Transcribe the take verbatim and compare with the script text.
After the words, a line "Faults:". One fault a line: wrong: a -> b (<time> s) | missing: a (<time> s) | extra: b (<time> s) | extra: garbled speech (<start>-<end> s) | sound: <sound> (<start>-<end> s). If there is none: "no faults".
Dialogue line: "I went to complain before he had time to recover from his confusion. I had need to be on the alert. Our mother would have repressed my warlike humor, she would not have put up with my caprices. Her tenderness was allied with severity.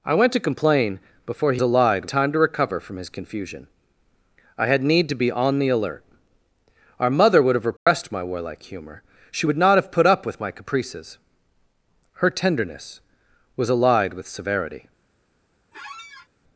"I went to complain before he allied time to recover from his confusion. I had need to be on the alert. Our mother would have repressed my warlike humor, she would not have put up with my caprices. Her tenderness was allied with severity.
Faults:
wrong: had -> allied (1.6 s)
sound: dropout (7.8-7.9 s)
sound: squeak (15.7-16.3 s)